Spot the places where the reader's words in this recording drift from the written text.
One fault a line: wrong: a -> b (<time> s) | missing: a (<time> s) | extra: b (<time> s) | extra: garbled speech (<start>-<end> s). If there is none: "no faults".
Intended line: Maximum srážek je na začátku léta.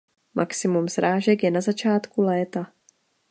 no faults